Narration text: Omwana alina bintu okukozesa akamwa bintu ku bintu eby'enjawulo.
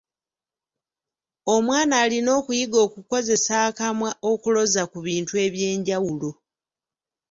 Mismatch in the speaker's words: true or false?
true